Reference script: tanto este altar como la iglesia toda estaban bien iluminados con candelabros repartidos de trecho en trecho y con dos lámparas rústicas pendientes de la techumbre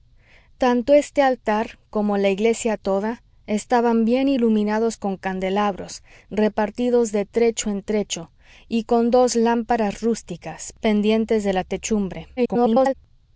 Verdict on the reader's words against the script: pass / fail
fail